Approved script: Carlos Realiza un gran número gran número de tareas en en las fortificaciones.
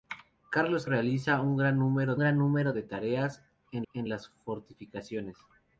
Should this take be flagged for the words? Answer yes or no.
no